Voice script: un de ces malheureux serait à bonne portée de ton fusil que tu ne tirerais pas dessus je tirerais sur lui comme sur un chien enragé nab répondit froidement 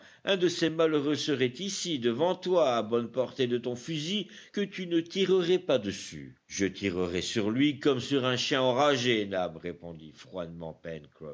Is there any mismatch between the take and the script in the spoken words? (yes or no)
yes